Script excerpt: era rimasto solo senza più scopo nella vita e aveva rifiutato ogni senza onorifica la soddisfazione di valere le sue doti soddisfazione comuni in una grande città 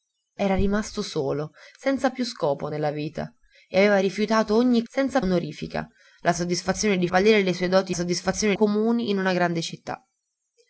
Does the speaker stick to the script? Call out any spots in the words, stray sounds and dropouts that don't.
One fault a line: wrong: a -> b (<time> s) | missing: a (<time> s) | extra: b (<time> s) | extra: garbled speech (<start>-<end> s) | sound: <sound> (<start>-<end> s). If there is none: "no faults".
no faults